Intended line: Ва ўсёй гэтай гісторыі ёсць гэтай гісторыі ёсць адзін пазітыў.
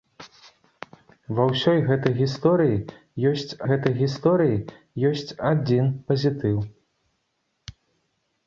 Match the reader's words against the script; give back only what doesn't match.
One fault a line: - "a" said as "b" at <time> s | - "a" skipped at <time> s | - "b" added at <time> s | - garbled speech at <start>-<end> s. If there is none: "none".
none